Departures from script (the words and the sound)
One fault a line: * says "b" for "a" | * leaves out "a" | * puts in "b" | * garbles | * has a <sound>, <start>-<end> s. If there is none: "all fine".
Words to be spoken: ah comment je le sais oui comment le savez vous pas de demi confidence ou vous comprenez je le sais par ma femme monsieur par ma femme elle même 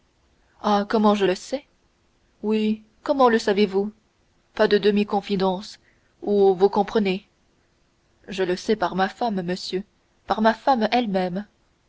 all fine